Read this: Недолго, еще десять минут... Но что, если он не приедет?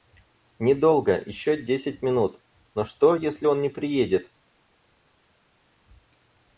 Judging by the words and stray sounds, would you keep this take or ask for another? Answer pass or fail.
pass